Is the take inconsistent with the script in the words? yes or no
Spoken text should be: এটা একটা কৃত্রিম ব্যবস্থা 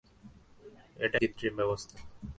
yes